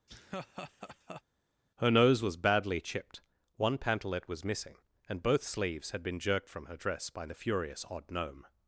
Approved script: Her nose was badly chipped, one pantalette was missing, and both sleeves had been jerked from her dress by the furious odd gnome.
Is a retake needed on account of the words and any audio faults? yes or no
yes